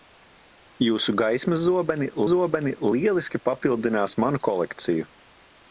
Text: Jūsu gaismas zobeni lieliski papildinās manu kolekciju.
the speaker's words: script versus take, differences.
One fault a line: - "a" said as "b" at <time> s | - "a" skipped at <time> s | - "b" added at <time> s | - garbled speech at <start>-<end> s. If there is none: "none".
- "zobeni" added at 2.3 s